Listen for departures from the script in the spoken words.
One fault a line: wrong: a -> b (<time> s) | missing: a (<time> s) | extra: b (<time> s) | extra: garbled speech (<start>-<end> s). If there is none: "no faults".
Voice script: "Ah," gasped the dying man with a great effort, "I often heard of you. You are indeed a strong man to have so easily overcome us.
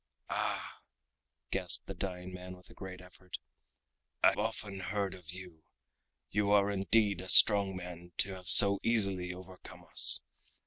no faults